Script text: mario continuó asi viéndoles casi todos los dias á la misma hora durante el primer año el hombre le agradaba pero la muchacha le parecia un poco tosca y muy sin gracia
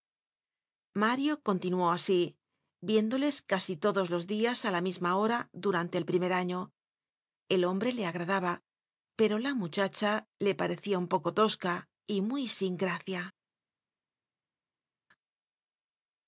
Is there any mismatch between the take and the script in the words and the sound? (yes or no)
no